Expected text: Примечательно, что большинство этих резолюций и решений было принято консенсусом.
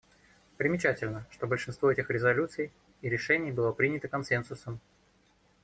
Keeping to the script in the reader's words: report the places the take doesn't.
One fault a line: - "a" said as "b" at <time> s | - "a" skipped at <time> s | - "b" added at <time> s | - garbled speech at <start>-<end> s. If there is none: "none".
none